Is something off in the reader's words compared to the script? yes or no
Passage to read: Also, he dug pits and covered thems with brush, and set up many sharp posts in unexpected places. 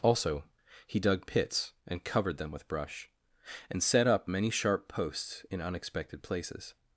yes